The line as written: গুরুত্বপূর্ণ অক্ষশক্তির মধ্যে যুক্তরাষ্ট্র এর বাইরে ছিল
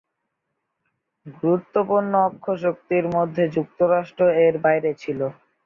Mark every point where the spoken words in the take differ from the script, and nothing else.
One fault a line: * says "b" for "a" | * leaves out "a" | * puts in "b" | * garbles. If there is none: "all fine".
all fine